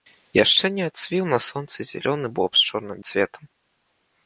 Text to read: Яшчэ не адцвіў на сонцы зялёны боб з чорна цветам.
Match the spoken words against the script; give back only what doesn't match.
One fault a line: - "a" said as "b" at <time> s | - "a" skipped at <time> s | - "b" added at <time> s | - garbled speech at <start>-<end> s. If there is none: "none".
none